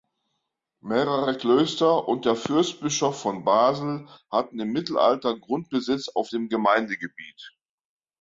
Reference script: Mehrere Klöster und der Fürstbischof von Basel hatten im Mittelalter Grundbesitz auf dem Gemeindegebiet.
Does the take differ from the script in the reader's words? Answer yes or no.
no